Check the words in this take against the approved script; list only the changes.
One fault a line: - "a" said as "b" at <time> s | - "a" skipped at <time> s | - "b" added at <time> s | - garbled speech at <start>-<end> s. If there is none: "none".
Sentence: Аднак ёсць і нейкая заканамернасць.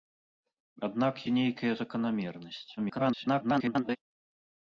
- "ёсць" skipped at 1.1 s
- garbled speech at 2.8-4.0 s